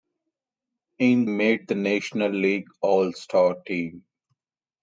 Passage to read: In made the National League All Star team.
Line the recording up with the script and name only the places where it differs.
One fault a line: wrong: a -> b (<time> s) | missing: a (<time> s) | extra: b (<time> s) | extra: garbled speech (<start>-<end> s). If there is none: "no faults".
no faults